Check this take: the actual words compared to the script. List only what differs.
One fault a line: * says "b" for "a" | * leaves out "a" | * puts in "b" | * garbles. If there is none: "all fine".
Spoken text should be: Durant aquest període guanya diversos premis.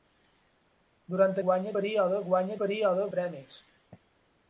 * says "guanya" for "aquest"
* says "període" for "diversos"